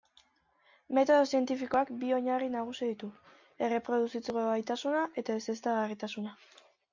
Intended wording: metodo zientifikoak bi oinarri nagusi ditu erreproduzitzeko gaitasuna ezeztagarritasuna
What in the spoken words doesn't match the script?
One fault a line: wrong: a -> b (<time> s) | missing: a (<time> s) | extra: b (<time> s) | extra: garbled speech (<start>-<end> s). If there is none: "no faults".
extra: eta (5.2 s)